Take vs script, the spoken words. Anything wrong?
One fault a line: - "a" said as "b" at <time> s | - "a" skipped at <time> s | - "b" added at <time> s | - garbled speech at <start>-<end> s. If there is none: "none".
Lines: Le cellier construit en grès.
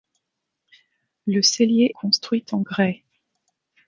none